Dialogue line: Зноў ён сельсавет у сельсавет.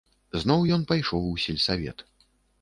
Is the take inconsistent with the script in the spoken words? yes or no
yes